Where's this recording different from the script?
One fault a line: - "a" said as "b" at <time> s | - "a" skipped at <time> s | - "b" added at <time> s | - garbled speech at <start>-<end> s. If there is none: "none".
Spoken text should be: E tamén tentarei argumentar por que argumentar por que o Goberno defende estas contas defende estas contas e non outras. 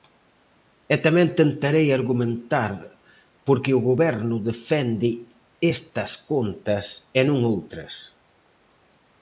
- "argumentar por que" skipped at 3.7 s
- "defende estas contas" skipped at 6.8 s